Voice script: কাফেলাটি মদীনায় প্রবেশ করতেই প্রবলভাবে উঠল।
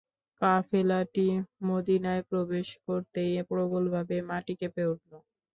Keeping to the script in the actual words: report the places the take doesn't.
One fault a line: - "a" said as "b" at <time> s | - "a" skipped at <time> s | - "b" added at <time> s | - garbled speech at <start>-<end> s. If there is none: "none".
- "মাটি কেঁপে" added at 4.3 s